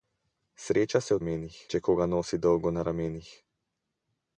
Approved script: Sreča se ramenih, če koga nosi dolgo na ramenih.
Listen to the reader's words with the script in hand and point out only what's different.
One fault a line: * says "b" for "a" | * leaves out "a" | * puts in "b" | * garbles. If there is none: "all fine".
all fine